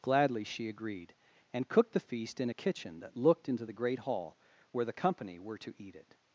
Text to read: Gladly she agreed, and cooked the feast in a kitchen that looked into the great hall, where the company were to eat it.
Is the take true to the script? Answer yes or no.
yes